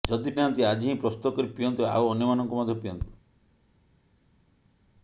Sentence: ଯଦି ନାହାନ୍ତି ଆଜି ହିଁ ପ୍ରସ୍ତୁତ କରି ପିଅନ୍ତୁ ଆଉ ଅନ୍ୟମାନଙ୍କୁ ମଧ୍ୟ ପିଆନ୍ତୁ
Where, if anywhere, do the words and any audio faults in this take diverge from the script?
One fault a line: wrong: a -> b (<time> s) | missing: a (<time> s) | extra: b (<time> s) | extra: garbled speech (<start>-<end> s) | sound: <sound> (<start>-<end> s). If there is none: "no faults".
no faults